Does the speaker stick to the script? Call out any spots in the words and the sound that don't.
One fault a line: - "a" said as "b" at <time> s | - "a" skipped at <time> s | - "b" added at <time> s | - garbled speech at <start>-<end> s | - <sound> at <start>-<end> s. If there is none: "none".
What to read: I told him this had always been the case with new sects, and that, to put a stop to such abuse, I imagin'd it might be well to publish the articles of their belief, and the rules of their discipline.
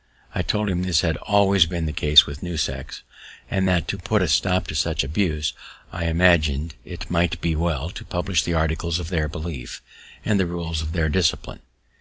none